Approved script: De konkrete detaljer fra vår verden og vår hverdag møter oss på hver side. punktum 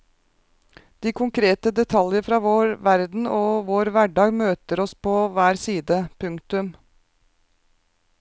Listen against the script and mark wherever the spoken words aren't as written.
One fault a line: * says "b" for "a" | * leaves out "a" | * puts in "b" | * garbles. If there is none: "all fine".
all fine